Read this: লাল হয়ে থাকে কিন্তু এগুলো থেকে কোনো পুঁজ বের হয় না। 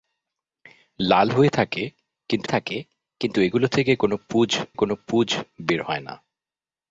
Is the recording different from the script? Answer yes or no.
yes